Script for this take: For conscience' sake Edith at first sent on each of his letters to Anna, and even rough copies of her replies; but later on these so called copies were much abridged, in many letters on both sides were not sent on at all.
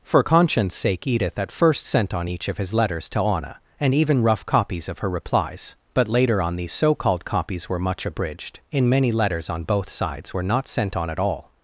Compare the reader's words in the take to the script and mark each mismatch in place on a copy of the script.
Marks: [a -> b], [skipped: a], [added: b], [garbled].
For conscience' sake Edith at first sent on each of his letters to Anna, and even rough copies of her replies; but later on these so called copies were much abridged, in many letters on both sides were not sent on at all.